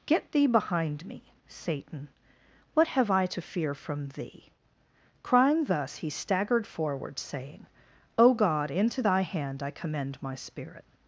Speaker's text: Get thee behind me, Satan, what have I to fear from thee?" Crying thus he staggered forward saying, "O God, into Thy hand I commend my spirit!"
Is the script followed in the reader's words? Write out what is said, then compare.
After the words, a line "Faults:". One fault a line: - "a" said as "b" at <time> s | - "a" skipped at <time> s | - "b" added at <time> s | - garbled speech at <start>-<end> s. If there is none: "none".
Get thee behind me, Satan, what have I to fear from thee?" Crying thus he staggered forward saying, "O God, into Thy hand I commend my spirit!"
Faults:
none